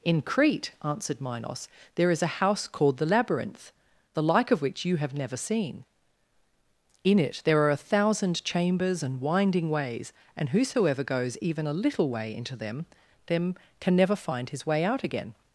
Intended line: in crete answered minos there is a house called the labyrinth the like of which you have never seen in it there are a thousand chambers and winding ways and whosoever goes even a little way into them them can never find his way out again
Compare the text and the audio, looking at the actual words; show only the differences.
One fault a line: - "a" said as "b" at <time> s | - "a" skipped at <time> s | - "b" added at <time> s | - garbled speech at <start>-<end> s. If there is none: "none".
none